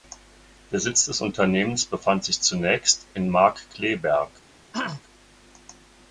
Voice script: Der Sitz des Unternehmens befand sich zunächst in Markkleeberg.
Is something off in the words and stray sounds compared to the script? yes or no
yes